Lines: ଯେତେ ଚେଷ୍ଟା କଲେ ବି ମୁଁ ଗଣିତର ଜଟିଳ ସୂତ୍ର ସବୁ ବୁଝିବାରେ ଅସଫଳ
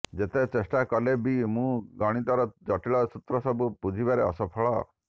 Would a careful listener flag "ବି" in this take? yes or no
no